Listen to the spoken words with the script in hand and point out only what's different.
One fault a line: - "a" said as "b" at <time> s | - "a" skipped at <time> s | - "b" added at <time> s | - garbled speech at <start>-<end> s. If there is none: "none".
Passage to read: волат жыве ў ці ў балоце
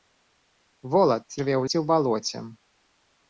none